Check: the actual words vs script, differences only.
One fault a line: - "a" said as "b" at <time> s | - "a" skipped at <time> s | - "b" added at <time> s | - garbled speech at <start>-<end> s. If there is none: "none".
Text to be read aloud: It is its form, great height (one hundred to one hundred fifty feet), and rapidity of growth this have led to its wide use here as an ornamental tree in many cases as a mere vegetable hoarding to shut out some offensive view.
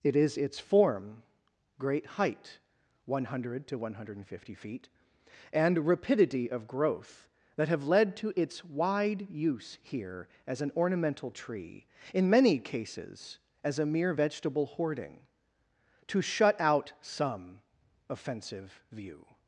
- "this" said as "that" at 7.5 s